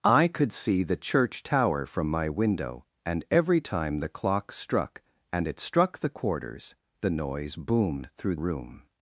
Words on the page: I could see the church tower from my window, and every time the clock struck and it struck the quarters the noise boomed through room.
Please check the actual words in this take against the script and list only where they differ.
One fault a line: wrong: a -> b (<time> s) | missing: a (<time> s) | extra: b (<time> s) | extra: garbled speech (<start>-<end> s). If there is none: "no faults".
no faults